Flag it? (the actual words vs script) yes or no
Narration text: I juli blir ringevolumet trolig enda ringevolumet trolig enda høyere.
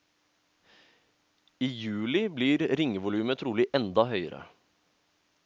yes